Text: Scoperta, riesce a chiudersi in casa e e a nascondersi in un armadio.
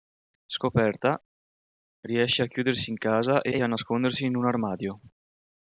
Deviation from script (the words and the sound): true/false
false